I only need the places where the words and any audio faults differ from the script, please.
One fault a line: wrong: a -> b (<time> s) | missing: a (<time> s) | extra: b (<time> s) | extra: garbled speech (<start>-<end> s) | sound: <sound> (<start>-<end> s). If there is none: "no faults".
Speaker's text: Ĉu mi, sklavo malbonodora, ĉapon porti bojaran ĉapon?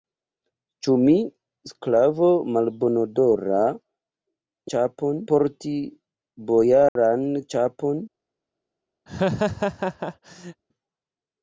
sound: dropout (6.9-7.0 s)
sound: laugh (9.1-10.6 s)